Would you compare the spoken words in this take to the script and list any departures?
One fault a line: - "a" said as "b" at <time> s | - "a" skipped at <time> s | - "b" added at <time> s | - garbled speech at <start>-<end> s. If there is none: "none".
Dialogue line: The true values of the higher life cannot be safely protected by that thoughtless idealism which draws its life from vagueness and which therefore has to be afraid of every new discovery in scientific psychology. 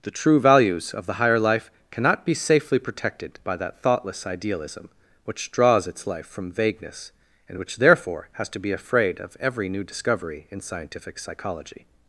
none